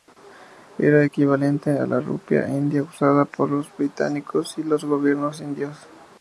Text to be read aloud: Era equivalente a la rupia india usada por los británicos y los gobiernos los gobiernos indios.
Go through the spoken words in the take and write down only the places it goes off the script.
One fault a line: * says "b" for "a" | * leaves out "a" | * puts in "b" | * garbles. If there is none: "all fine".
* leaves out "los gobiernos"